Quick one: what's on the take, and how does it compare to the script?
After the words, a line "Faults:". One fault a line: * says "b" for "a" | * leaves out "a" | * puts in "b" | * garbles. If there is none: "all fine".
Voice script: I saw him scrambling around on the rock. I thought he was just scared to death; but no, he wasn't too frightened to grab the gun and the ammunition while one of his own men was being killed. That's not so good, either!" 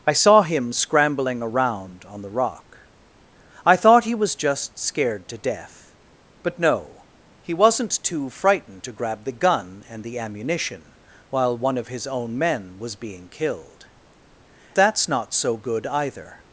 I saw him scrambling around on the rock. I thought he was just scared to death; but no, he wasn't too frightened to grab the gun and the ammunition while one of his own men was being killed. That's not so good, either!"
Faults:
all fine